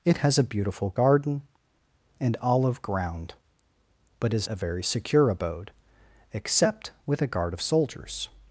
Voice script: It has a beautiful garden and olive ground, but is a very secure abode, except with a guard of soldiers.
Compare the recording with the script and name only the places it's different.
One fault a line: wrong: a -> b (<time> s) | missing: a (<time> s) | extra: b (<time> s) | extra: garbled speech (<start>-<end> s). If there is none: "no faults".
no faults